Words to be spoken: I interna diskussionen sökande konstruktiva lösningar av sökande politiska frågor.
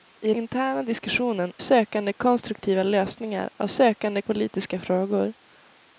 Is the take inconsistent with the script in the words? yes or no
no